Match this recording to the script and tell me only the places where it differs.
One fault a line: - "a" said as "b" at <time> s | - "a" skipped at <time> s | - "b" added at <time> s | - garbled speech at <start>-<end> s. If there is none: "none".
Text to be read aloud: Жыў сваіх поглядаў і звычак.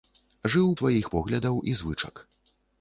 none